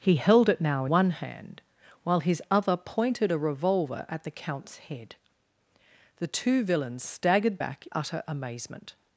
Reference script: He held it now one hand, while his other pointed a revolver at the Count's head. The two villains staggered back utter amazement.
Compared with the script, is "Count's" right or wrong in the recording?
right